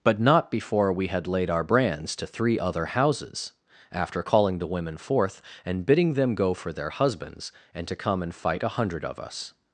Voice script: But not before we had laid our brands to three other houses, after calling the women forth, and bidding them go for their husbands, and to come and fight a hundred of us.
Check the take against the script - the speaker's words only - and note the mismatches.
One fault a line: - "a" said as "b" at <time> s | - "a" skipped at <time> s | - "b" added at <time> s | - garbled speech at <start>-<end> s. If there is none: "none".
none